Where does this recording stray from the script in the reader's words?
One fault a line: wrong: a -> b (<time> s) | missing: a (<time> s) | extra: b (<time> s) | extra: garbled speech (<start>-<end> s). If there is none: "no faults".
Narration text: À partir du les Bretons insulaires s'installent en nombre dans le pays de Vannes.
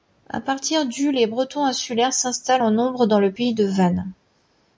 no faults